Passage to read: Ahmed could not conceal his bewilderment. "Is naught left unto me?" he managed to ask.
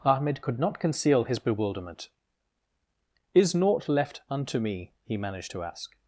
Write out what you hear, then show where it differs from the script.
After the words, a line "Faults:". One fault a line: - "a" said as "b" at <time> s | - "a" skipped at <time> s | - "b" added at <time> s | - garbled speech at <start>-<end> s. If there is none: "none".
Ahmed could not conceal his bewilderment. "Is naught left unto me?" he managed to ask.
Faults:
none